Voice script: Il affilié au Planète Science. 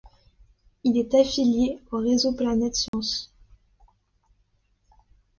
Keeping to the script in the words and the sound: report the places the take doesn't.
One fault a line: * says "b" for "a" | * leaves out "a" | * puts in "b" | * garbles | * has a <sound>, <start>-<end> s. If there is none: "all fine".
* puts in "est"
* puts in "réseau"
* has a dropout, 2.9-2.9 s